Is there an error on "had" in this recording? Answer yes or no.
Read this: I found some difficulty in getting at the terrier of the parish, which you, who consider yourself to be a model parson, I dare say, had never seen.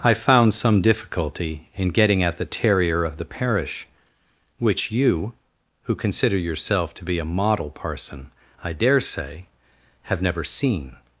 yes